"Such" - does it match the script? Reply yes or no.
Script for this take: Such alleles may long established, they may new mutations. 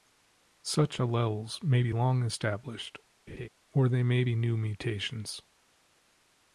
yes